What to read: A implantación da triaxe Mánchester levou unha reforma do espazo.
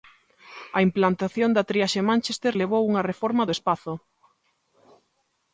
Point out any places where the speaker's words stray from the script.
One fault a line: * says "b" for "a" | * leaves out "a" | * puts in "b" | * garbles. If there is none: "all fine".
all fine